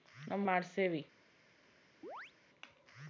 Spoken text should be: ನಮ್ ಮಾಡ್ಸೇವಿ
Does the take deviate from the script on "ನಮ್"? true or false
false